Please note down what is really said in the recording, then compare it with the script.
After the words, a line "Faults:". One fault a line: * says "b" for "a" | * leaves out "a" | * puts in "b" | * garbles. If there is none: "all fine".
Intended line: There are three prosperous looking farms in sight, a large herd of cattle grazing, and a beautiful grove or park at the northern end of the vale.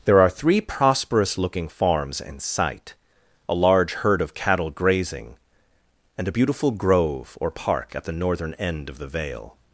There are three prosperous looking farms in sight, a large herd of cattle grazing, and a beautiful grove or park at the northern end of the vale.
Faults:
all fine